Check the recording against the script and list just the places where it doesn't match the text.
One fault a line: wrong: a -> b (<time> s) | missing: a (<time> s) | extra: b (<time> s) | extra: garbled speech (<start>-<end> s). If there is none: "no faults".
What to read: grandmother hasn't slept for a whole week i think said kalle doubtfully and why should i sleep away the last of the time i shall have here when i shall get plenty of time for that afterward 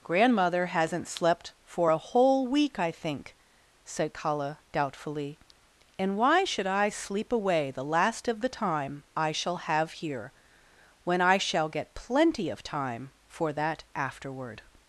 no faults